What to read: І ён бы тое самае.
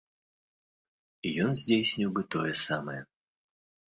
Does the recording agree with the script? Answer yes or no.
no